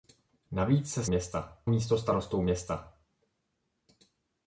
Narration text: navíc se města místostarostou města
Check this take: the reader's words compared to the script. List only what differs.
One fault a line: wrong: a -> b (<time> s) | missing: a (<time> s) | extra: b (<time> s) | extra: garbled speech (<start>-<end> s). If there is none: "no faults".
no faults